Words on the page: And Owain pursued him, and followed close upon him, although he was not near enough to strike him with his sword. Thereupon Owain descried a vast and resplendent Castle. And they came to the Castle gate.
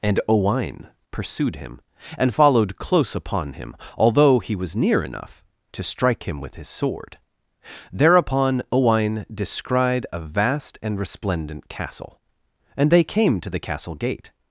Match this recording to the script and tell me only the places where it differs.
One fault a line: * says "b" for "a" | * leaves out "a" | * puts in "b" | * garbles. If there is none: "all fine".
* leaves out "not"